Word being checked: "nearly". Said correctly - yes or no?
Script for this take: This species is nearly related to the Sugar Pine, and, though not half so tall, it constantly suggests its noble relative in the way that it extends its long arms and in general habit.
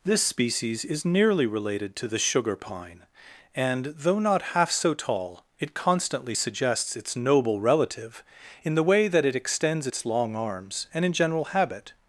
yes